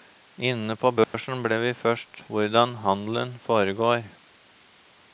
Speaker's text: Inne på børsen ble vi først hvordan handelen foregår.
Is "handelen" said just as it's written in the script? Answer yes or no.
yes